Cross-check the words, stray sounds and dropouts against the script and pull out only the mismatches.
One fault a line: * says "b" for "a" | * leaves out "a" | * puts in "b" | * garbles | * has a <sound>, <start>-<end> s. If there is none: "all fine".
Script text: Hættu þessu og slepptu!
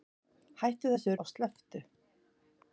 all fine